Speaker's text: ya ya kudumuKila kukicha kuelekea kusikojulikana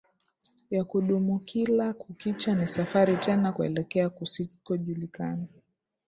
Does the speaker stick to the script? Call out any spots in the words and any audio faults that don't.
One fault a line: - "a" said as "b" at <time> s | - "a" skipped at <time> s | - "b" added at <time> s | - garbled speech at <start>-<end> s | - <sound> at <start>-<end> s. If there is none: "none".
- "ya" skipped at 0.8 s
- "ni safari tena" added at 2.5 s